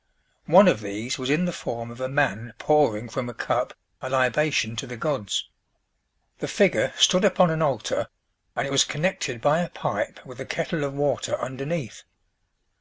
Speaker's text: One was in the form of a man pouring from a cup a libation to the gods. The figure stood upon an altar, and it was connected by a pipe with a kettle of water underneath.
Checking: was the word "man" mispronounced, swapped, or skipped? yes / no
no